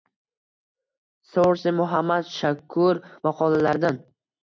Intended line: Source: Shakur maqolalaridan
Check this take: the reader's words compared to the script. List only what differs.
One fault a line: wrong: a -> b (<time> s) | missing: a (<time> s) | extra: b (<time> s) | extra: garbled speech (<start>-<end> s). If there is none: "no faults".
extra: Muhammad (1.8 s)